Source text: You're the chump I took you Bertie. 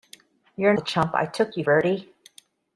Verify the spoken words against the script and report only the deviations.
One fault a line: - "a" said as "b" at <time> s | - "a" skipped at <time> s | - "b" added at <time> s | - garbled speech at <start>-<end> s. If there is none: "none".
none